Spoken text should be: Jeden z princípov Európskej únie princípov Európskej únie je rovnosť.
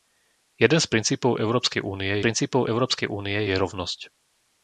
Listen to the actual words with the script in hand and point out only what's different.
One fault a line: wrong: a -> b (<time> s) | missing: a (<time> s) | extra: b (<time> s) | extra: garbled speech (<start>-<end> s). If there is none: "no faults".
no faults